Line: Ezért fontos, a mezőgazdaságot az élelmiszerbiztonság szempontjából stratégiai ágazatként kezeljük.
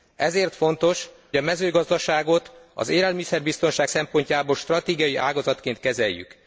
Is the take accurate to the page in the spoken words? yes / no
yes